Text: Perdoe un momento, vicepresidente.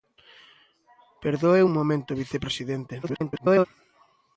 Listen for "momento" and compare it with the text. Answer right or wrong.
right